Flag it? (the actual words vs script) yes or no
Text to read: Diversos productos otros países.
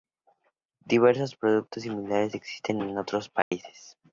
yes